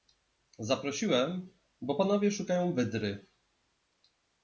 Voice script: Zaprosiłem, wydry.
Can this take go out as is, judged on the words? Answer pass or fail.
fail